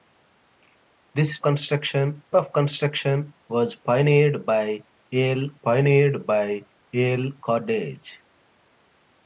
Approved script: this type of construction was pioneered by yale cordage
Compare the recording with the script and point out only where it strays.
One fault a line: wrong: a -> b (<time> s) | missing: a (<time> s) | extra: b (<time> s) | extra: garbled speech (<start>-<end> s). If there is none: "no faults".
wrong: type -> construction (1.4 s)
extra: pioneered by yale (5.5 s)